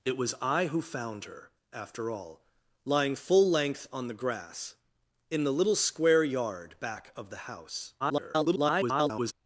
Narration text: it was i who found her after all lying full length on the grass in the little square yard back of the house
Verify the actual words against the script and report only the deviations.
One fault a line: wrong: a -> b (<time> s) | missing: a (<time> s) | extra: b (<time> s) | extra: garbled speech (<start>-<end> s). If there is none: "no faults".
extra: garbled speech (8.0-9.3 s)